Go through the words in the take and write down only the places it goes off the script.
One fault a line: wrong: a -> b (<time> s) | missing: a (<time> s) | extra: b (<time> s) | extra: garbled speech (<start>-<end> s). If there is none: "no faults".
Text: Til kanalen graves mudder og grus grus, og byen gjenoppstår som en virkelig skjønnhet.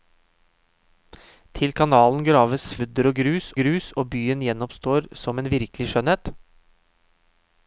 no faults